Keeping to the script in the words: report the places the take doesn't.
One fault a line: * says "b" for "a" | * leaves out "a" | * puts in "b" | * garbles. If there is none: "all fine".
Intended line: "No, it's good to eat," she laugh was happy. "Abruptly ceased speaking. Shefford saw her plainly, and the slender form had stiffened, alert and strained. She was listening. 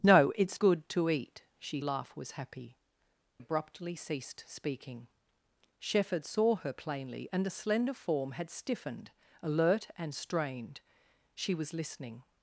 all fine